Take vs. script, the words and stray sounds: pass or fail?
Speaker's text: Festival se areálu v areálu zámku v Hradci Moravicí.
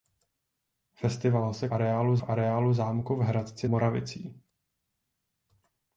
pass